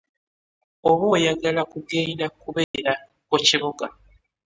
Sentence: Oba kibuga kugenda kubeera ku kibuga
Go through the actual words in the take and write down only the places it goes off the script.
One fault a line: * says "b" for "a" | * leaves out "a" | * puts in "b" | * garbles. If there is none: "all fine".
* says "oyagala" for "kibuga"